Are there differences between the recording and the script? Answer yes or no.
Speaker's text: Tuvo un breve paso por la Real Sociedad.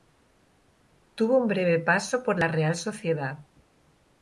no